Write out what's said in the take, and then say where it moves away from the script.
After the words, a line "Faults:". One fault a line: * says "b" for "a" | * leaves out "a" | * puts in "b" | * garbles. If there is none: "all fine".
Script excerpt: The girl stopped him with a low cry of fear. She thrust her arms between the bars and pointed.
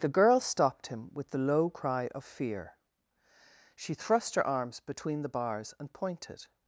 The girl stopped him with the low cry of fear. She thrust her arms between the bars and pointed.
Faults:
* says "the" for "a"